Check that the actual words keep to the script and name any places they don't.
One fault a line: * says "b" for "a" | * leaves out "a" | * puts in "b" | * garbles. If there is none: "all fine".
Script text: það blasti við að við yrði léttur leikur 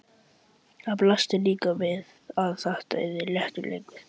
* puts in "líka"
* says "þetta" for "við"